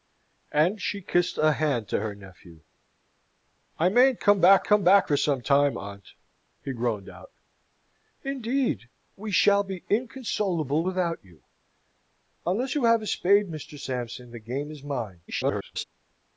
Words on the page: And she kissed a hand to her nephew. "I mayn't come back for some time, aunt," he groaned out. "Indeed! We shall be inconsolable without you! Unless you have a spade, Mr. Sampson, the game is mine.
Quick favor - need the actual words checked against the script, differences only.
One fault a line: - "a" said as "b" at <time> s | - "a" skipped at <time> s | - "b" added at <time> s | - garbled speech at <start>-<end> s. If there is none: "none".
- "come back" added at 4.6 s
- garbled speech at 15.3-15.8 s